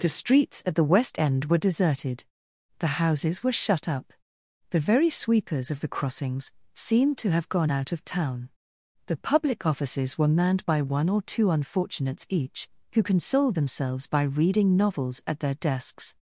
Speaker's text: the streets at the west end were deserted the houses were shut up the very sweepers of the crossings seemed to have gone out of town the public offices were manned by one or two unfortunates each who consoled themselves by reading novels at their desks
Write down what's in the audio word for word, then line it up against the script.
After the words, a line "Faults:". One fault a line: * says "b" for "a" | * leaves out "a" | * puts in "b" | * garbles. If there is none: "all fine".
the streets at the west end were deserted the houses were shut up the very sweepers of the crossings seemed to have gone out of town the public offices were manned by one or two unfortunates each who consoled themselves by reading novels at their desks
Faults:
all fine